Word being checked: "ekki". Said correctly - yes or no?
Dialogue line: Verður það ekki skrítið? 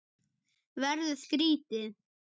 no